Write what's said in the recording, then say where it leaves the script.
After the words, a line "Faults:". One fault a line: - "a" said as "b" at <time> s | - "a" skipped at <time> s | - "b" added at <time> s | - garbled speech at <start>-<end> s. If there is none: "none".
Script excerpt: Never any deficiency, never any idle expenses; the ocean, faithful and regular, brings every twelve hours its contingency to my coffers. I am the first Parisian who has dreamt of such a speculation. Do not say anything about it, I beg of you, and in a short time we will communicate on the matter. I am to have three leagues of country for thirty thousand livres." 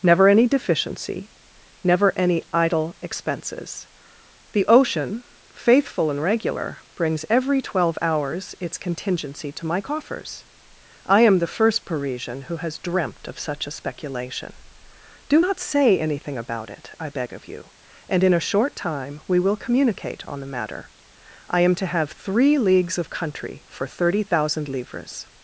Never any deficiency, never any idle expenses; the ocean, faithful and regular, brings every twelve hours its contingency to my coffers. I am the first Parisian who has dreamt of such a speculation. Do not say anything about it, I beg of you, and in a short time we will communicate on the matter. I am to have three leagues of country for thirty thousand livres."
Faults:
none